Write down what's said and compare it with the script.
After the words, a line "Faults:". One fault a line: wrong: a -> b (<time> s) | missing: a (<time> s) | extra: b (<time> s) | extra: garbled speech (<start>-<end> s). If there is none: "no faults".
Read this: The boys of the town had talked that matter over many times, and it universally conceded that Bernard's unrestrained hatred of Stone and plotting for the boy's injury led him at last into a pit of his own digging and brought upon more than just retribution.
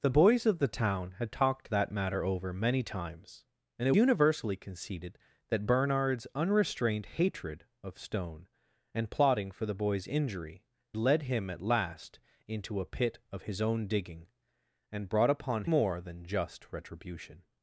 The boys of the town had talked that matter over many times, and it universally conceded that Bernard's unrestrained hatred of Stone and plotting for the boy's injury led him at last into a pit of his own digging and brought upon more than just retribution.
Faults:
no faults